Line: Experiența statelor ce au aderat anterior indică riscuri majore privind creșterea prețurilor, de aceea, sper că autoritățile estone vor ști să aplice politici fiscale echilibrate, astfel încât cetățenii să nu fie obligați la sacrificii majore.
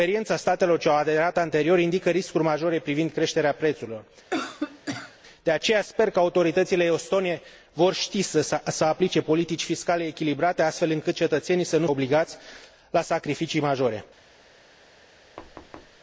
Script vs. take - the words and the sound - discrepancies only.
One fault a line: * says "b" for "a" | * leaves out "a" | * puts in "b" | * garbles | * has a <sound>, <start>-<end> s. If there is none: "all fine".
* has a cough, 4.3-5.2 s
* leaves out "fie"
* has a thud, 15.4-16.0 s